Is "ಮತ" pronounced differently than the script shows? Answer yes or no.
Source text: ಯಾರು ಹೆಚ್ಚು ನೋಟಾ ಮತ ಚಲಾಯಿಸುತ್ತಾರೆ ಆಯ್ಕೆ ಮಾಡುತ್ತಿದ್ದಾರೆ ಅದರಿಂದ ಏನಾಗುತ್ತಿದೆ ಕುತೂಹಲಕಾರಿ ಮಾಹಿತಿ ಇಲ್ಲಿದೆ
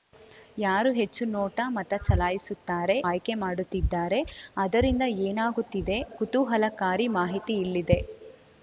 no